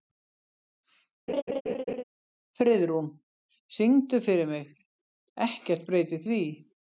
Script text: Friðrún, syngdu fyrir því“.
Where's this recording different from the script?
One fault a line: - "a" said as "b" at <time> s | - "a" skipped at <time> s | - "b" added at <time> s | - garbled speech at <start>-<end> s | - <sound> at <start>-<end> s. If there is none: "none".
- laugh at 1.3-2.0 s
- "mig Ekkert breytir" added at 4.5 s